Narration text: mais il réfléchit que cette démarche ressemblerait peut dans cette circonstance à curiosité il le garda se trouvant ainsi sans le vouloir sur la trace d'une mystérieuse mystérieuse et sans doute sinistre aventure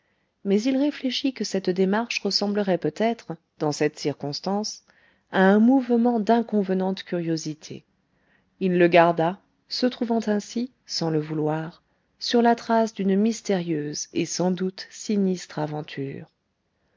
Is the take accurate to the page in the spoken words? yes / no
no